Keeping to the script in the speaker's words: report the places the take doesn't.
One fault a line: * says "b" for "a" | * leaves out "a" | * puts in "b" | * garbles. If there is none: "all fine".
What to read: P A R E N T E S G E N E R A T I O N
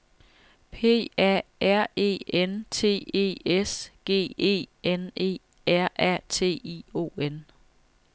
all fine